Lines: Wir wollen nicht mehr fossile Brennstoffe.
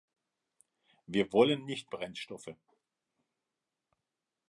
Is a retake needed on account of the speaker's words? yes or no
yes